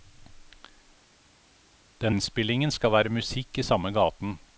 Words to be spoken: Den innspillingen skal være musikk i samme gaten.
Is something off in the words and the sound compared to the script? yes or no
no